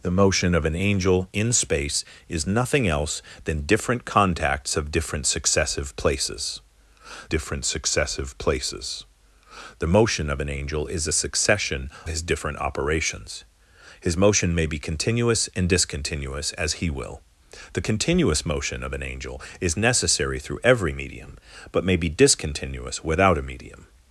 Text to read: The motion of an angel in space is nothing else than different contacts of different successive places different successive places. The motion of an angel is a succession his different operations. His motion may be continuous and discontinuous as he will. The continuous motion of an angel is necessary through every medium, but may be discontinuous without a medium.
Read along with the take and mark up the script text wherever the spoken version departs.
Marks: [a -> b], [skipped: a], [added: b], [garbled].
The motion of an angel in space is nothing else than different contacts of different successive places different successive places. The motion of an angel is a succession his different operations. His motion may be continuous and discontinuous as he will. The continuous motion of an angel is necessary through every medium, but may be discontinuous without a medium.